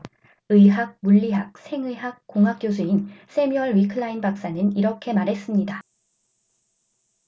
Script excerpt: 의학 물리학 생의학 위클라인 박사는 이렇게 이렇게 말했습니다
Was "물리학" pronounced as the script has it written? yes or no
yes